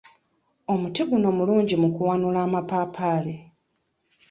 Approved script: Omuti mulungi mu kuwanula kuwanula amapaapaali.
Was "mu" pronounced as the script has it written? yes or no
yes